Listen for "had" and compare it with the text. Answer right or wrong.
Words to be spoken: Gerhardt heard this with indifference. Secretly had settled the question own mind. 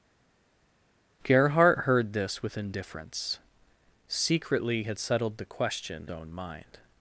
right